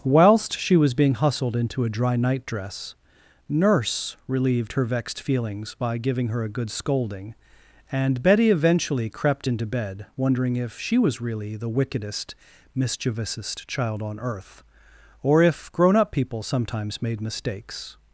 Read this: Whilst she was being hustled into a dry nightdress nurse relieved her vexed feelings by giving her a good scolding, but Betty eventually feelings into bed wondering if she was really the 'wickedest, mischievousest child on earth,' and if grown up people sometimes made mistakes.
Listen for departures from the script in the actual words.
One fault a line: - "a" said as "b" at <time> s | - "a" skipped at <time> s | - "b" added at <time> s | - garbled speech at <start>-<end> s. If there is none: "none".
- "but" said as "and" at 7.9 s
- "feelings" said as "crept" at 9.1 s
- "and" said as "or" at 15.2 s